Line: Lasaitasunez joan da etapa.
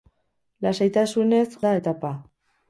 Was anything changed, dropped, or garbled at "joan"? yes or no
yes